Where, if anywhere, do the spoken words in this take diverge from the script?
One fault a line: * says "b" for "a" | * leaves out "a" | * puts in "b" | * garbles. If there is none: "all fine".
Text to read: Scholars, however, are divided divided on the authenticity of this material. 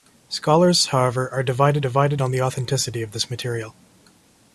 all fine